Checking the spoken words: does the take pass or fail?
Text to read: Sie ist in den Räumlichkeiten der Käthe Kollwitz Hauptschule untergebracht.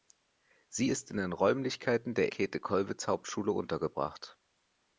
pass